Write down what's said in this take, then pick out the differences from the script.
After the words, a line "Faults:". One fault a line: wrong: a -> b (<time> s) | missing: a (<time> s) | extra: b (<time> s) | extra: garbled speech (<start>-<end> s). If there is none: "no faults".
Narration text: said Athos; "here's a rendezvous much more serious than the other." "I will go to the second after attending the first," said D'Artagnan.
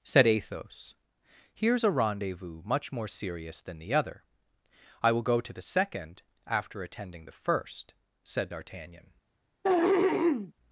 said Athos; "here's a rendezvous much more serious than the other." "I will go to the second after attending the first," said D'Artagnan.
Faults:
no faults